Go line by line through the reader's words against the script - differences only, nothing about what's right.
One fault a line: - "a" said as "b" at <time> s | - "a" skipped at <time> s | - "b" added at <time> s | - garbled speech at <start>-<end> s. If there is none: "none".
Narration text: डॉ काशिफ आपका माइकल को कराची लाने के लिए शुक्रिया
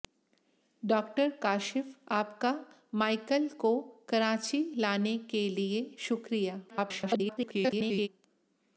- garbled speech at 6.7-8.1 s